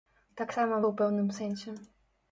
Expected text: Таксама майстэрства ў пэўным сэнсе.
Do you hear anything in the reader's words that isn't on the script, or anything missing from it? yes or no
yes